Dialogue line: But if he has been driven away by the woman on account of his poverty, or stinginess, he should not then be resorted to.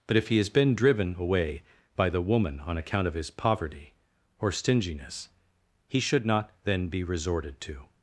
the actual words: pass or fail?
pass